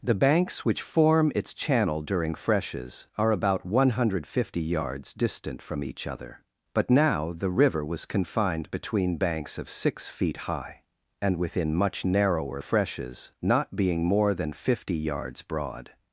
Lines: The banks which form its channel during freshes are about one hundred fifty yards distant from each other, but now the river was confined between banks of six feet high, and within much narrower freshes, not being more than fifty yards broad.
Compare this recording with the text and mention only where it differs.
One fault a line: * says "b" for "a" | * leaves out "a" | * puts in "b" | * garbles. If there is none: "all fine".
all fine